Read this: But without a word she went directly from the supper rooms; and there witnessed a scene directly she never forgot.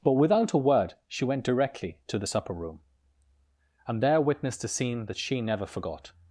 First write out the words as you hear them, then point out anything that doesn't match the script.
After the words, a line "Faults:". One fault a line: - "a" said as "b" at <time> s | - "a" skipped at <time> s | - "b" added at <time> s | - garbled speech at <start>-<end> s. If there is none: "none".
But without a word she went directly to the supper room; and there witnessed a scene that she never forgot.
Faults:
- "from" said as "to" at 2.1 s
- "rooms" said as "room" at 2.5 s
- "directly" said as "that" at 5.0 s